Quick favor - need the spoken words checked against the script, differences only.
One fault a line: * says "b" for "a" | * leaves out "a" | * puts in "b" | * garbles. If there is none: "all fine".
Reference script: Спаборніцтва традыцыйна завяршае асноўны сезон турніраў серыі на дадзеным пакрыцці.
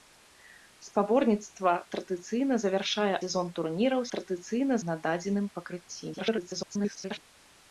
* leaves out "асноўны"
* says "традыцыйна" for "серыі"
* garbles